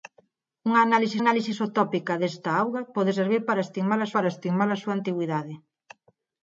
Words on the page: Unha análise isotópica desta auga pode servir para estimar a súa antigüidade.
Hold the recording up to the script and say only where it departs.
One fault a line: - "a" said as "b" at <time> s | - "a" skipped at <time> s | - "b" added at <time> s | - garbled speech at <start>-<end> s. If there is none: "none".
- "análise" added at 1.2 s
- "para estimar a" added at 4.1 s